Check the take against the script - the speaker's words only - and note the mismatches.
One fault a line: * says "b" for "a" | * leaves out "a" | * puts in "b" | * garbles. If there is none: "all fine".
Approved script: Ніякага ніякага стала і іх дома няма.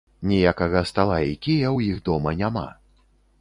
* leaves out "ніякага"
* puts in "кія ў"